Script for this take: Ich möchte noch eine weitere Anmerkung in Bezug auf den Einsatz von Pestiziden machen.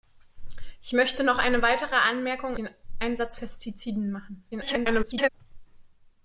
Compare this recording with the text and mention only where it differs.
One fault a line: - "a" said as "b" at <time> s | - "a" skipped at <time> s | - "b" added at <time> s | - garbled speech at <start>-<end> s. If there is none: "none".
- "in Bezug auf" skipped at 2.6 s
- "von" skipped at 3.4 s
- garbled speech at 4.5-5.3 s